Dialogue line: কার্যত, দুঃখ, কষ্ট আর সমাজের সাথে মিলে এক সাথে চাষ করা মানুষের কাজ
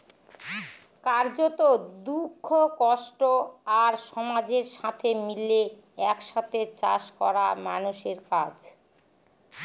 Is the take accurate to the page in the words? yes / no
yes